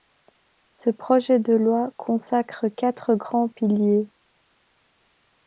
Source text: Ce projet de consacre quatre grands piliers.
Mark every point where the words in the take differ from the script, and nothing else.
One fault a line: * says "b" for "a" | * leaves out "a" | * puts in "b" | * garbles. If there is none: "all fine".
* puts in "loi"